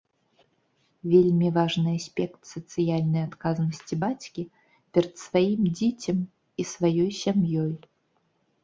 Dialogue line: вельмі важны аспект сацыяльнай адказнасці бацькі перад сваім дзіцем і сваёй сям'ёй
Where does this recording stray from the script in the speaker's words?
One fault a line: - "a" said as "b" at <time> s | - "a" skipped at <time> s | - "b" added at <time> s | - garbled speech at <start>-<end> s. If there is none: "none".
none